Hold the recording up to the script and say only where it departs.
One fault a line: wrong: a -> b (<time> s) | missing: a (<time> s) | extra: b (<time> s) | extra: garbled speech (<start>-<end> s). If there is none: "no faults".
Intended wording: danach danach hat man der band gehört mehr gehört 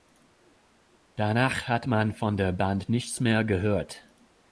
missing: danach (1.7 s)
extra: von (2.1 s)
wrong: gehört -> nichts (2.9 s)